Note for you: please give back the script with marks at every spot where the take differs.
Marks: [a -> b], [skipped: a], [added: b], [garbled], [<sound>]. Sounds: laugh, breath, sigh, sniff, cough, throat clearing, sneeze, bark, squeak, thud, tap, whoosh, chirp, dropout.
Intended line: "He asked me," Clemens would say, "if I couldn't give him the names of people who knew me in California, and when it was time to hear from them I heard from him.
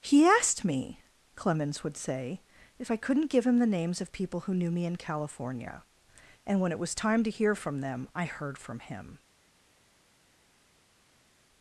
"He asked me," Clemens would say, "if I couldn't give him the names of people who knew me in California, and when it was time to hear from them I heard from him.